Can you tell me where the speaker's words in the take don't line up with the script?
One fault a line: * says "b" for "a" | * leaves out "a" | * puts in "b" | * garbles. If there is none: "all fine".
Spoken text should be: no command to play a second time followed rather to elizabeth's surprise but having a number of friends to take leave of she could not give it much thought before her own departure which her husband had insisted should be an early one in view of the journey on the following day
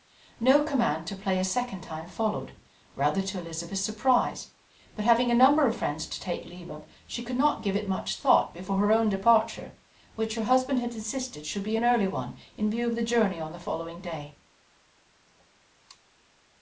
all fine